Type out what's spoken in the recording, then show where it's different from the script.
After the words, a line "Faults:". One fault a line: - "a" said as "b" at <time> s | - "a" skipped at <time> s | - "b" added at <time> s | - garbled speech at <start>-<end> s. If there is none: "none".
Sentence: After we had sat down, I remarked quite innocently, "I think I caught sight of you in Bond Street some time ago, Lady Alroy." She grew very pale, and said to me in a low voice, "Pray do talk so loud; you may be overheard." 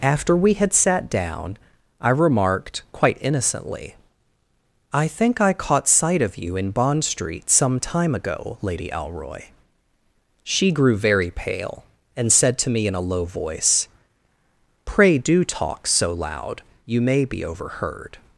After we had sat down, I remarked quite innocently, "I think I caught sight of you in Bond Street some time ago, Lady Alroy." She grew very pale, and said to me in a low voice, "Pray do talk so loud; you may be overheard."
Faults:
none